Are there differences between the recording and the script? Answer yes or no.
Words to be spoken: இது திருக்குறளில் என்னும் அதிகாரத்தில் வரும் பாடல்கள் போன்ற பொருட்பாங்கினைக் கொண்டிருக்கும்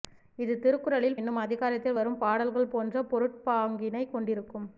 no